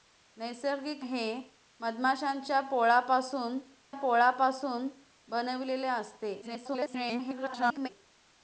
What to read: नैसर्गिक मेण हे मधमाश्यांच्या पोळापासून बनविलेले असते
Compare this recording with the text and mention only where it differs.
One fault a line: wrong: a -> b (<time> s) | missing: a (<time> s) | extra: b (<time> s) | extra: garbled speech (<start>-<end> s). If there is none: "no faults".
missing: मेण (1.1 s)
extra: पोळापासून (3.9 s)
extra: garbled speech (6.4-7.9 s)